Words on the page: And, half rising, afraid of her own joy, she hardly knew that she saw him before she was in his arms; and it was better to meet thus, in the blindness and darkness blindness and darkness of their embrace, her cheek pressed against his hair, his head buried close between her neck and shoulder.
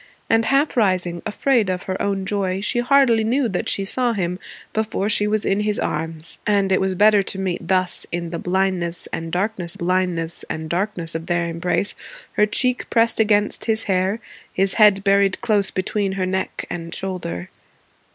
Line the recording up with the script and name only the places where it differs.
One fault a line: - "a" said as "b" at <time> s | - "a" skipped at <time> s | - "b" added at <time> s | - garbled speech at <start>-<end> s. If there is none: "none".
none